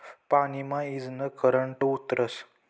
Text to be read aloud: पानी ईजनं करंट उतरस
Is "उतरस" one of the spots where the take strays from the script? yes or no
no